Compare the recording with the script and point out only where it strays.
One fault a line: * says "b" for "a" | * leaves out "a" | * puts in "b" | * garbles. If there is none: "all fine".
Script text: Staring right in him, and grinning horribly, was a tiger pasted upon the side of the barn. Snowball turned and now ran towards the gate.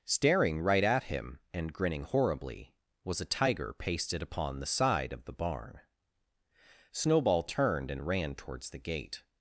* says "at" for "in"
* leaves out "now"